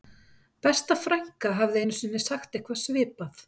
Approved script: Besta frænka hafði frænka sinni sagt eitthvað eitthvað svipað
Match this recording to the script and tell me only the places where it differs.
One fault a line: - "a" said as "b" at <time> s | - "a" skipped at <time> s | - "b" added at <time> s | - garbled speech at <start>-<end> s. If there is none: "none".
- "frænka" said as "einu" at 1.8 s
- "eitthvað" skipped at 2.8 s